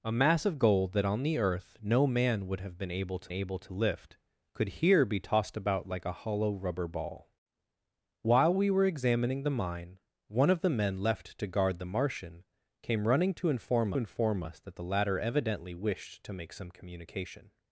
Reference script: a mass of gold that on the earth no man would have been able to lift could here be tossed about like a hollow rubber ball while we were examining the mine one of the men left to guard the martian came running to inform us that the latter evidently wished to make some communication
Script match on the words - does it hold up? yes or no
no